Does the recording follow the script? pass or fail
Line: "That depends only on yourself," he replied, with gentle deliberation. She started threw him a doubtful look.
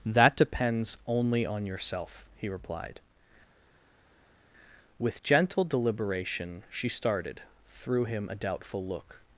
pass